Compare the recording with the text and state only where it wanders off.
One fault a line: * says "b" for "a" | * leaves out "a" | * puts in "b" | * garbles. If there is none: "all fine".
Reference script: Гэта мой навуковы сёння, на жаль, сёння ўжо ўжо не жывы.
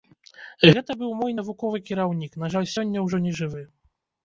* puts in "быў"
* says "кіраўнік" for "сёння"
* leaves out "ўжо"